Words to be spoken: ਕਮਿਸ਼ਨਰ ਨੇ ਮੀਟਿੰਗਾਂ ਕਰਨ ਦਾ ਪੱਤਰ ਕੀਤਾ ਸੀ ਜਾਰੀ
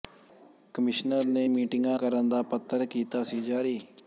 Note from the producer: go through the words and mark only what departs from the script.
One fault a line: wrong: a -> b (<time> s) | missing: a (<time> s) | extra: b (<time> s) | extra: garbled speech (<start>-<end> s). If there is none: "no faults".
no faults